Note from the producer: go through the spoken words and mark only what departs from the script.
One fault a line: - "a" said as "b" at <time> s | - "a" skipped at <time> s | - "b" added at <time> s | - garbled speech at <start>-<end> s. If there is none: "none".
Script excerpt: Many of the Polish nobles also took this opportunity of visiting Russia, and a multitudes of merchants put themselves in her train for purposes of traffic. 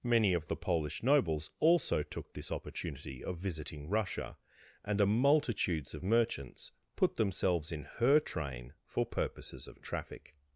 none